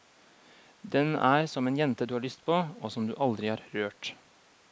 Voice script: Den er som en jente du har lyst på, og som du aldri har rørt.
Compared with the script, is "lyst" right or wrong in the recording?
right